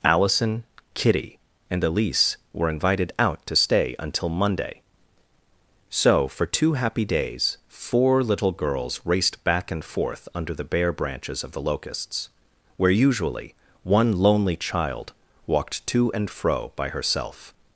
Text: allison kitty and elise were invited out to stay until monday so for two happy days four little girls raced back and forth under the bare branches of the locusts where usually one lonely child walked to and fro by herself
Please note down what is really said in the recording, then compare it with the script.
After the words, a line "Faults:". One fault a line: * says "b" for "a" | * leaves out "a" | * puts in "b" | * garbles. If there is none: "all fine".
allison kitty and elise were invited out to stay until monday so for two happy days four little girls raced back and forth under the bare branches of the locusts where usually one lonely child walked to and fro by herself
Faults:
all fine